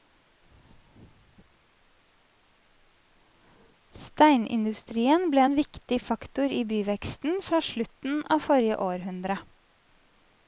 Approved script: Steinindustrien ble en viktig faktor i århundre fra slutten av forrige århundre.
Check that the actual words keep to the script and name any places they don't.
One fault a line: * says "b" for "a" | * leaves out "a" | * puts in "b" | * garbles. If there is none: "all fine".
* says "byveksten" for "århundre"